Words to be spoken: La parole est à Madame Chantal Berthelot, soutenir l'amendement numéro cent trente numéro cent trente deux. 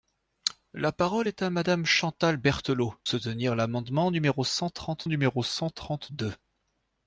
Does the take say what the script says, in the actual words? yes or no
yes